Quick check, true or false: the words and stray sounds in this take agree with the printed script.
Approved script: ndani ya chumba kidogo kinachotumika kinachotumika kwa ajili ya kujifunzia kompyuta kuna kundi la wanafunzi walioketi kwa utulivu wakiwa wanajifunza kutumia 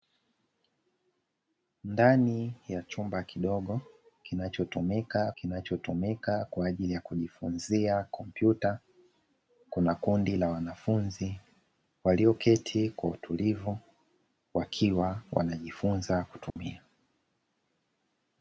false